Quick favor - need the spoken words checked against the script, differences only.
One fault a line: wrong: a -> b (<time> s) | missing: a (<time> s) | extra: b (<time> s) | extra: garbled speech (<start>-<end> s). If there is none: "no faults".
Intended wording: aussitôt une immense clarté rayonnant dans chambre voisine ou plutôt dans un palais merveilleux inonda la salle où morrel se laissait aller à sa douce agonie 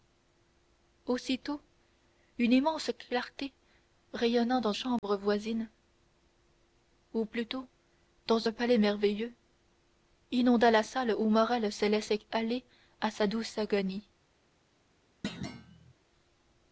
no faults